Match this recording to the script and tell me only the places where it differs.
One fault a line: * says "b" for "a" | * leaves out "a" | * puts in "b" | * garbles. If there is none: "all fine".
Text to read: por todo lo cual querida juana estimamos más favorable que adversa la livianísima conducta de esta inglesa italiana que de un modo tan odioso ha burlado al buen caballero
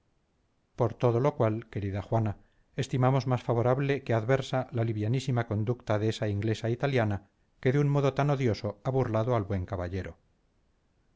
* says "esa" for "esta"